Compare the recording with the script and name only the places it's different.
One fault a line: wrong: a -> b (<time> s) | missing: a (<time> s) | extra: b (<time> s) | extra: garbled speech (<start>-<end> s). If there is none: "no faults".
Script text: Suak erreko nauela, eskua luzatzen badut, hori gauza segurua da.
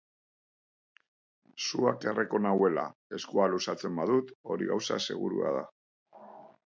no faults